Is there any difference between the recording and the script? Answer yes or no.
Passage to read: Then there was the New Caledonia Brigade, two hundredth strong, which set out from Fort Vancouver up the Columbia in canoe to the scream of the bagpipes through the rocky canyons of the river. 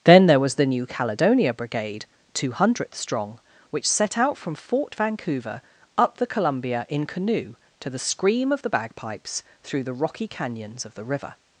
no